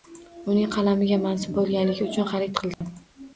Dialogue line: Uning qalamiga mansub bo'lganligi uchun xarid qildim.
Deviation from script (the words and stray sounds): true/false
true